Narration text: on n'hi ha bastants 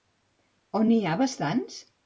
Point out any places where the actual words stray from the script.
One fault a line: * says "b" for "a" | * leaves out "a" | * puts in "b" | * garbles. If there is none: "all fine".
all fine